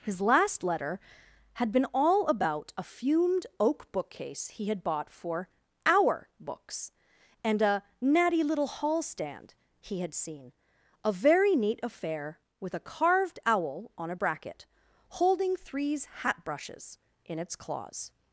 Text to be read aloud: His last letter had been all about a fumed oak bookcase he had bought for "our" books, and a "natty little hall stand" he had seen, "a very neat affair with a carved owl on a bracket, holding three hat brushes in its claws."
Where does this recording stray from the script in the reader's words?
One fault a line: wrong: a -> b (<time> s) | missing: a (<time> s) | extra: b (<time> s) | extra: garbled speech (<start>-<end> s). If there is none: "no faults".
wrong: three -> threes (15.6 s)